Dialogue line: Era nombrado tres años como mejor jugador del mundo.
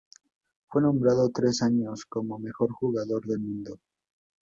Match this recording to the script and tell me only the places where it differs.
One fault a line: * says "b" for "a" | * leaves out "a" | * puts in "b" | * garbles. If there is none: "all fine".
* says "Fue" for "Era"